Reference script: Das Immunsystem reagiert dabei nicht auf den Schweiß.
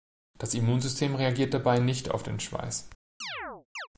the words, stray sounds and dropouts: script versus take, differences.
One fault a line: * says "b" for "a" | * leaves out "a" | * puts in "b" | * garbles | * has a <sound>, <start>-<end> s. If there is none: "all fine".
* has a chirp, 3.2-3.9 s